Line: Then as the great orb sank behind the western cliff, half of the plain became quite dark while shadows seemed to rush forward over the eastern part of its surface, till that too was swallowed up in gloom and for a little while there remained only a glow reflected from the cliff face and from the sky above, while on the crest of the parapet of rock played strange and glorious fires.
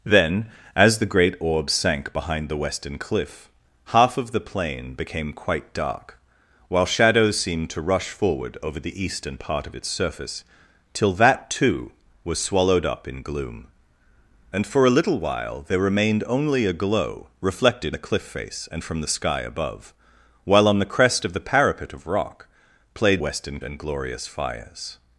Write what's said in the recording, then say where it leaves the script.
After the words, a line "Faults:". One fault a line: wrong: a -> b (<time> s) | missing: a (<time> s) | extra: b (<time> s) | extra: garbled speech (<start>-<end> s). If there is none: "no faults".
Then as the great orb sank behind the western cliff, half of the plain became quite dark while shadows seemed to rush forward over the eastern part of its surface, till that too was swallowed up in gloom and for a little while there remained only a glow reflected the cliff face and from the sky above, while on the crest of the parapet of rock played western and glorious fires.
Faults:
missing: from (18.0 s)
wrong: strange -> western (23.2 s)